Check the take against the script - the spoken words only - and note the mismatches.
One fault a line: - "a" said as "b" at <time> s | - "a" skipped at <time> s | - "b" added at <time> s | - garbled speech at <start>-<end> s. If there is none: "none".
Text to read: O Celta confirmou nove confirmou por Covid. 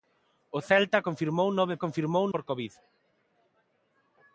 none